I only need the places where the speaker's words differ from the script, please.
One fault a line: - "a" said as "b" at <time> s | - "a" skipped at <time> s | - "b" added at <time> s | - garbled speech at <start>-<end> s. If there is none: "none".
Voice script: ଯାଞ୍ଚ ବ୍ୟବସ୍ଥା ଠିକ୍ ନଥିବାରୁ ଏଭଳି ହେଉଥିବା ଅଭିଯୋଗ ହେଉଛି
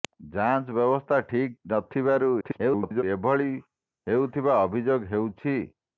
- garbled speech at 2.4-3.0 s